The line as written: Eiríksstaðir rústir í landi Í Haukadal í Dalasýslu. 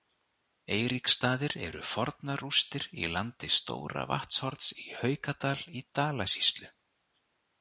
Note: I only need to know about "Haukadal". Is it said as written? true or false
true